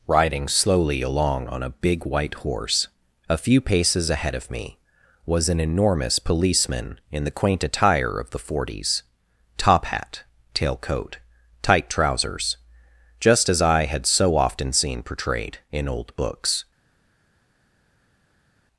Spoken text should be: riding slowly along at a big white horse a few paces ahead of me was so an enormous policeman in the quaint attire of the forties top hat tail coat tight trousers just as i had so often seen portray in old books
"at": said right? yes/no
no